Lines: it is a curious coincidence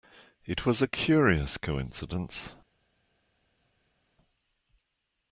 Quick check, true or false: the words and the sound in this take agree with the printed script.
false